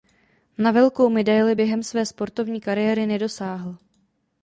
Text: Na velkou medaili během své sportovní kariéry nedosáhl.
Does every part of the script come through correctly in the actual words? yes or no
yes